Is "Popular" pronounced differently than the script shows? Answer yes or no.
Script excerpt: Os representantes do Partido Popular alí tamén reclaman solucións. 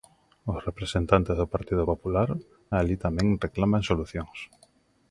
no